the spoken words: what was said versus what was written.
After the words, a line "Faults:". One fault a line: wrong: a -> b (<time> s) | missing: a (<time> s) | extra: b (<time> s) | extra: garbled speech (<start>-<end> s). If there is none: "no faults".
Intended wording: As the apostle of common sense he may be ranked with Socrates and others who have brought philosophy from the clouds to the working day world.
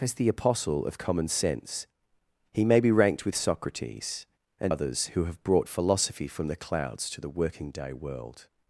As the apostle of common sense he may be ranked with Socrates and others who have brought philosophy from the clouds to the working day world.
Faults:
no faults